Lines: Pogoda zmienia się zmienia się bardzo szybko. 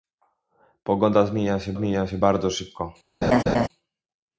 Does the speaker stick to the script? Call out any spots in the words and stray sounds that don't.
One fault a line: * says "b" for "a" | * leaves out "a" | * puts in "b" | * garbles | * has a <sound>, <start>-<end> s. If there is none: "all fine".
* has a laugh, 3.2-3.7 s